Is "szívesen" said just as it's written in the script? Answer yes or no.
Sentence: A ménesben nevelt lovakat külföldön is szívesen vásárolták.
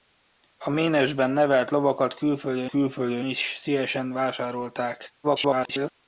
yes